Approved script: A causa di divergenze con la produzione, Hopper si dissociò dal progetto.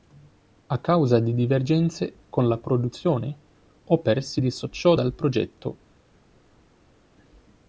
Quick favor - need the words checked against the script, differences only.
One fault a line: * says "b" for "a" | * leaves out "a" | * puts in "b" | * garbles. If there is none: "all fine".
all fine